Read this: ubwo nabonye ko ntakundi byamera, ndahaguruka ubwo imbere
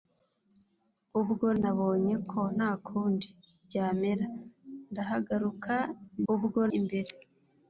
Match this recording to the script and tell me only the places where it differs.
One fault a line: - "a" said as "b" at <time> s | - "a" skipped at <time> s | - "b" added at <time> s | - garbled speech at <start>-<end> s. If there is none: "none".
none